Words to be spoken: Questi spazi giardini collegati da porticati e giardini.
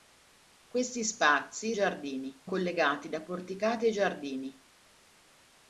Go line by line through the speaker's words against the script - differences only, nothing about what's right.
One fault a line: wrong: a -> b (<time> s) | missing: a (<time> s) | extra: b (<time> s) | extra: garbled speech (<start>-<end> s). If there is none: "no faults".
no faults